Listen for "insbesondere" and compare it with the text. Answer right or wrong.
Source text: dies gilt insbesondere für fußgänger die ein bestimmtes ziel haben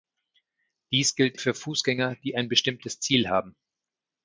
wrong